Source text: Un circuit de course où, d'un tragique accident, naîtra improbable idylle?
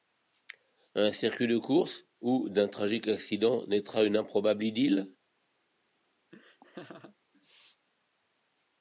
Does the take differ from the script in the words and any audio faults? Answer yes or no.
yes